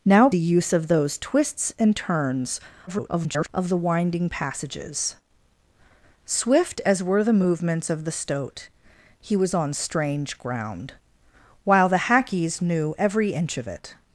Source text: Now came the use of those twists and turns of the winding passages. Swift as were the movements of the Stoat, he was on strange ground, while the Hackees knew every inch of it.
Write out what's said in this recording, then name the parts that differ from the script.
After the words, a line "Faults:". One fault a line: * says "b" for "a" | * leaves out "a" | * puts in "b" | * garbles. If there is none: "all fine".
Now the use of those twists and turns [garbled] of the winding passages. Swift as were the movements of the Stoat, he was on strange ground, while the Hackees knew every inch of it.
Faults:
* leaves out "came"
* garbles